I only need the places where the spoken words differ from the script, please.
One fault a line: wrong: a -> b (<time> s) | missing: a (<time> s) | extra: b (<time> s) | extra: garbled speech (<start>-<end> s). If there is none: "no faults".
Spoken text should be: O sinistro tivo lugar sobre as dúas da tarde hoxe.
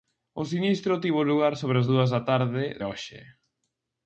no faults